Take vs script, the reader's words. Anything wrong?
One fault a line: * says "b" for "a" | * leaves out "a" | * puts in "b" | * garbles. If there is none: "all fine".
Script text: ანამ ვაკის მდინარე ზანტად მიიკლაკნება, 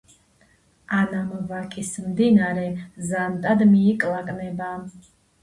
all fine